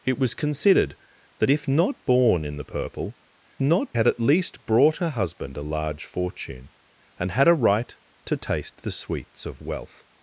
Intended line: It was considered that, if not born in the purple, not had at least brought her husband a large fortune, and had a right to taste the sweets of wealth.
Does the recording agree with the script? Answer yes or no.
yes